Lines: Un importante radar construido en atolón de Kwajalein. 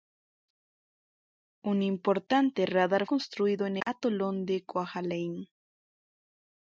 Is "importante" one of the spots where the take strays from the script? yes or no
no